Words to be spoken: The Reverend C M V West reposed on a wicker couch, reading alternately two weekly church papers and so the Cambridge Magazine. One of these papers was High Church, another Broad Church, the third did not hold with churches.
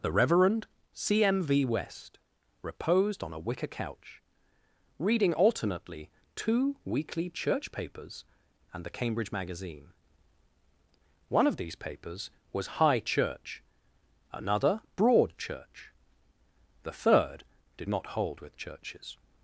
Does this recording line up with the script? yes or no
no